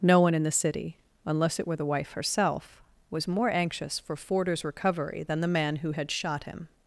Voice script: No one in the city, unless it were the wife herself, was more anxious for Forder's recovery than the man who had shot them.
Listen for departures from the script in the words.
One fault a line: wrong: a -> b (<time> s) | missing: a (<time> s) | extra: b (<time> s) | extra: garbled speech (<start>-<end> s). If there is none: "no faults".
wrong: them -> him (6.4 s)